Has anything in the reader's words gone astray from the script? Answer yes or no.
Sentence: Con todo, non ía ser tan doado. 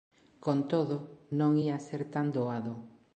no